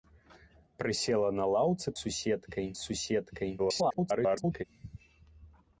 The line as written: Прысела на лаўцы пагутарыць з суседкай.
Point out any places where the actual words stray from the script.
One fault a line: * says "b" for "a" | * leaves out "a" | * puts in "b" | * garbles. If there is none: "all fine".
* says "суседкай" for "пагутарыць"
* garbles